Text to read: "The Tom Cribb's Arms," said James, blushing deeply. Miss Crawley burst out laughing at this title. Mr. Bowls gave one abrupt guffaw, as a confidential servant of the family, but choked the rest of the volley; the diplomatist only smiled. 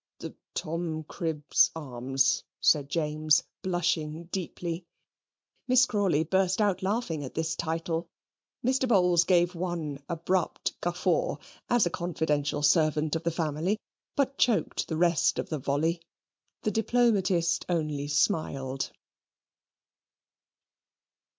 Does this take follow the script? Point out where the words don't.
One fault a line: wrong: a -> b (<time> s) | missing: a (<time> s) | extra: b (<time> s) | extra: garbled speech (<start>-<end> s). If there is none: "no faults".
no faults